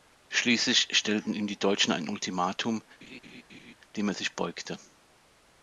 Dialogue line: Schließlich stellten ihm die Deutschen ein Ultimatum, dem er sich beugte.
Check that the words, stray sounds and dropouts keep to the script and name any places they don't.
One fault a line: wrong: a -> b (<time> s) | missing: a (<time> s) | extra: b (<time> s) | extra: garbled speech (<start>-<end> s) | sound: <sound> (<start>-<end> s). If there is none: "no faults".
sound: laugh (3.0-3.7 s)